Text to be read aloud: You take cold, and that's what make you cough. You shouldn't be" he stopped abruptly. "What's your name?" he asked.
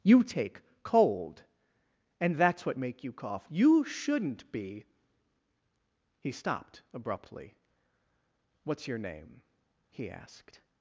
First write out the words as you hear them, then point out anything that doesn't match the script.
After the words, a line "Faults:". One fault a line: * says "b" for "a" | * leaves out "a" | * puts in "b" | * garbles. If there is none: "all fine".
You take cold, and that's what make you cough. You shouldn't be" he stopped abruptly. "What's your name?" he asked.
Faults:
all fine